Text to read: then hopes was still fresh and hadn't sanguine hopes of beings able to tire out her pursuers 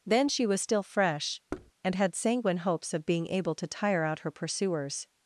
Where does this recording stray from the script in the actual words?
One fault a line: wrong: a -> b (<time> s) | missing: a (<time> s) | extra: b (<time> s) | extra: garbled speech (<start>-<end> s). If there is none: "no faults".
wrong: hopes -> she (0.3 s)
wrong: hadn't -> had (1.9 s)
wrong: beings -> being (3.0 s)